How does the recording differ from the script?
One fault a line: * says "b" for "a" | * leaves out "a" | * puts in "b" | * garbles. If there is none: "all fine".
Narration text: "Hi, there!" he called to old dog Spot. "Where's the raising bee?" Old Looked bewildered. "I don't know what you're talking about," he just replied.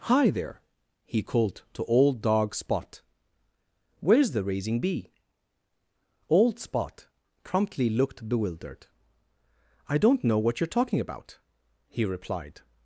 * puts in "Spot promptly"
* leaves out "just"